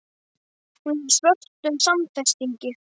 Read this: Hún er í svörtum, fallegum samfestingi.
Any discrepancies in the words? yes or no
yes